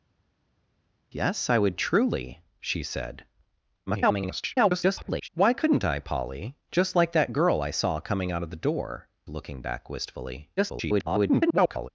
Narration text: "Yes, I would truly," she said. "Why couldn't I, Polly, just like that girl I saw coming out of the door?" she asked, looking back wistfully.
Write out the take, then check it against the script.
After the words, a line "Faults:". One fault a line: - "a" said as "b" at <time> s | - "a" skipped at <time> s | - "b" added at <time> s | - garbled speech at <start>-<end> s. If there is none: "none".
"Yes, I would truly," she said. [garbled] "Why couldn't I, Polly, just like that girl I saw coming out of the door?" looking back wistfully. [garbled]
Faults:
- garbled speech at 3.9-5.3 s
- "she asked" skipped at 9.1 s
- garbled speech at 10.6-11.9 s